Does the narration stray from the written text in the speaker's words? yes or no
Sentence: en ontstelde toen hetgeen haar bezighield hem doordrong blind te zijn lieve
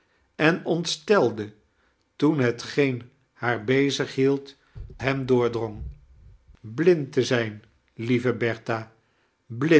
no